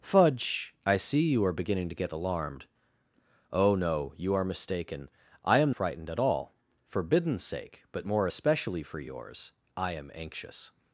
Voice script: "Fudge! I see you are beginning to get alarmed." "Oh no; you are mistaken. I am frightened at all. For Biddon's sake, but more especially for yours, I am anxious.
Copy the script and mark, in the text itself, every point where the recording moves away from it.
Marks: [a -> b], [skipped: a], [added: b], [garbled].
"Fudge! I see you are beginning to get alarmed." "Oh no; you are mistaken. I am frightened at all. For Biddon's sake, but more especially for yours, I am anxious.